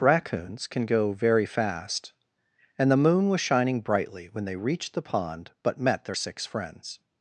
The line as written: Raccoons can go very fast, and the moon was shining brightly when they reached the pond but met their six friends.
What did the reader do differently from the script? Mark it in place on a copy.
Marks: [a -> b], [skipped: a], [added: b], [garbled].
Raccoons can go very fast, and the moon was shining brightly when they reached the pond but met their six friends.